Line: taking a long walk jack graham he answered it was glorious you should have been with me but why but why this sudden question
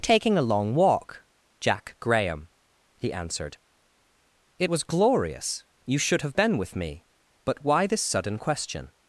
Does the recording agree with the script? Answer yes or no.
no